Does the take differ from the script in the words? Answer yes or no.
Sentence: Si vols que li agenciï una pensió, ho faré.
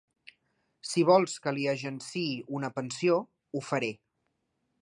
no